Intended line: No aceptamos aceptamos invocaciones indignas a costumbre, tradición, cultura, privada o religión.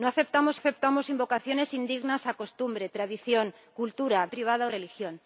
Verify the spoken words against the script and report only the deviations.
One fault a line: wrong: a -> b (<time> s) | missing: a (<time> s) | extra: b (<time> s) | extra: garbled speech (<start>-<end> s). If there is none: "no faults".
no faults